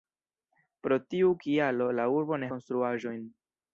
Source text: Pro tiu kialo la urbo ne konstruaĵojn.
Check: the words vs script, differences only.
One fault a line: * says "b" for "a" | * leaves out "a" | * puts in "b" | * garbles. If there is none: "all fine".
all fine